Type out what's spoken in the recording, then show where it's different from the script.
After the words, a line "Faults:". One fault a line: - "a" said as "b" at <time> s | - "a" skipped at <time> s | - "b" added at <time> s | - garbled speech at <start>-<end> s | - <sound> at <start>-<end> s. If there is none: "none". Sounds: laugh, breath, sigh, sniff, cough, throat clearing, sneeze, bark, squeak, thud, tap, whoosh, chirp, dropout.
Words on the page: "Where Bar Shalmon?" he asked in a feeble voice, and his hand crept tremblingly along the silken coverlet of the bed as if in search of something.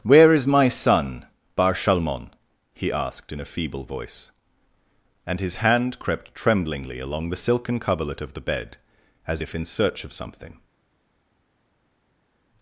"Where is my son, Bar Shalmon?" he asked in a feeble voice, and his hand crept tremblingly along the silken coverlet of the bed as if in search of something.
Faults:
- "is my son" added at 0.3 s